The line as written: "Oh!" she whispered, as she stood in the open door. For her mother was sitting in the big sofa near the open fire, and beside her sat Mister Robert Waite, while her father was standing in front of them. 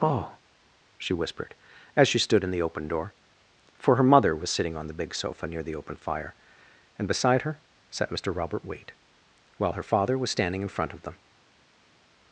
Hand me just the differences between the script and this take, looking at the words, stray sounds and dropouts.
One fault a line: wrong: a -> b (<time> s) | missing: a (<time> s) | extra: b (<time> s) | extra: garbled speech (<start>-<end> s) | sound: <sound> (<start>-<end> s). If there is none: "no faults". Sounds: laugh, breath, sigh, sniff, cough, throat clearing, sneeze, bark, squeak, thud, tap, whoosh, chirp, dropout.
wrong: in -> on (4.8 s)